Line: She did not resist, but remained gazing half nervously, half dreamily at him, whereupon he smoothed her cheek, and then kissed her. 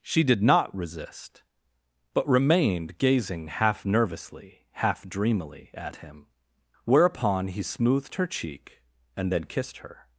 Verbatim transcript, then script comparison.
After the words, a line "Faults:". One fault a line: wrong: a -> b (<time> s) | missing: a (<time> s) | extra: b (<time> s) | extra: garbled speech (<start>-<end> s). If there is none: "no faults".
She did not resist, but remained gazing half nervously, half dreamily at him, whereupon he smoothed her cheek, and then kissed her.
Faults:
no faults